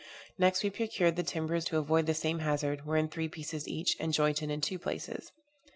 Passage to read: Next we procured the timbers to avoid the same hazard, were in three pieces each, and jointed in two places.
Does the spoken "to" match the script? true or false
true